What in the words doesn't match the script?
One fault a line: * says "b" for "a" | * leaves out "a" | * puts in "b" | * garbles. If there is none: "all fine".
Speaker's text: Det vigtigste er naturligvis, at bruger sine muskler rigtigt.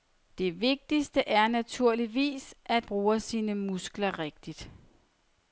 all fine